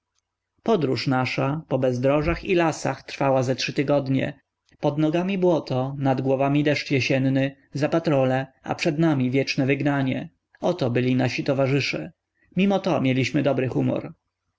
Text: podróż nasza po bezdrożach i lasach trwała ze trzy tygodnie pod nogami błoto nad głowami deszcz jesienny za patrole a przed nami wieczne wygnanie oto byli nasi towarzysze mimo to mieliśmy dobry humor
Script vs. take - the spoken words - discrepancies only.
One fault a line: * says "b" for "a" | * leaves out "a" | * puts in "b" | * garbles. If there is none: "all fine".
all fine